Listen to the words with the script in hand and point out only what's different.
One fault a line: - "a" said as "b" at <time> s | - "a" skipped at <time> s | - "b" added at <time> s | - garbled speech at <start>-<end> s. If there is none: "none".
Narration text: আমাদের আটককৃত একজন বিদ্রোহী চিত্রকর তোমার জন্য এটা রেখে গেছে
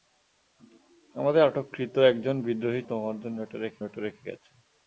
- "চিত্রকর" skipped at 2.8 s
- "এটা রেখে" added at 3.8 s